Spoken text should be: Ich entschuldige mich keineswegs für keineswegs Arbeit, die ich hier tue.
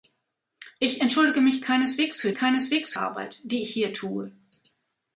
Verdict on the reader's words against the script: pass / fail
pass